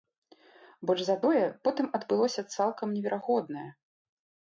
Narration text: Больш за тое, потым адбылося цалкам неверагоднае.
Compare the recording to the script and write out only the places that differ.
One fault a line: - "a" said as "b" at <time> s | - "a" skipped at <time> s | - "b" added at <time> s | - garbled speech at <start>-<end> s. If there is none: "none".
none